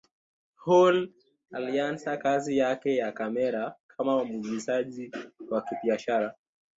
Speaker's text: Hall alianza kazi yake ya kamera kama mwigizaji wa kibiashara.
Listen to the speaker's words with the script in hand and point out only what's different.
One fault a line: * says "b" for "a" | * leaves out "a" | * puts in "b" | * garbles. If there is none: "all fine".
all fine